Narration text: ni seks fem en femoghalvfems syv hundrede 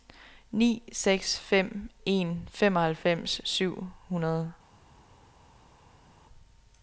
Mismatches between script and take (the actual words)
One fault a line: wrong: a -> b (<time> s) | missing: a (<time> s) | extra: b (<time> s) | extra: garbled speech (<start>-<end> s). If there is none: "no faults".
no faults